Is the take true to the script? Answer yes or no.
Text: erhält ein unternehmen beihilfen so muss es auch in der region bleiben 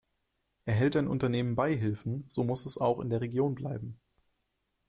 yes